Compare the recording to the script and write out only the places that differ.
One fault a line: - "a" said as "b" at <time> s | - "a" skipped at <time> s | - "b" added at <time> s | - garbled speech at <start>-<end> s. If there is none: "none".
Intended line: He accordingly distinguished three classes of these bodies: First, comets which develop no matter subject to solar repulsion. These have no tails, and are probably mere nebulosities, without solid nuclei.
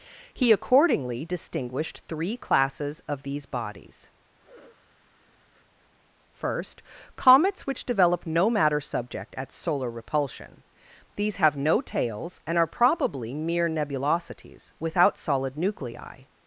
- "to" said as "at" at 9.4 s